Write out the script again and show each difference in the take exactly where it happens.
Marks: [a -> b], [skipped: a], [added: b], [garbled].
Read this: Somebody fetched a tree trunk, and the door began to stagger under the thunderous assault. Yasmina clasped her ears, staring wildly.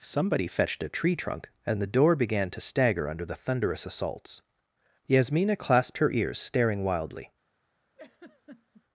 Somebody fetched a tree trunk, and the door began to stagger under the thunderous [assault. -> assaults] Yasmina clasped her ears, staring wildly.